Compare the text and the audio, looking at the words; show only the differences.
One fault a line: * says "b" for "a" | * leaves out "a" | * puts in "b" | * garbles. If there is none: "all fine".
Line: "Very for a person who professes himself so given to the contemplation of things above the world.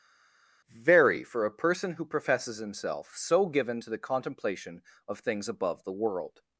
all fine